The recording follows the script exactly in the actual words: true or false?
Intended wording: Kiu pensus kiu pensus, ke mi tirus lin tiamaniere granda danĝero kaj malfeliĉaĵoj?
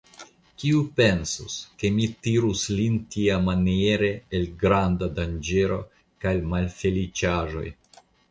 false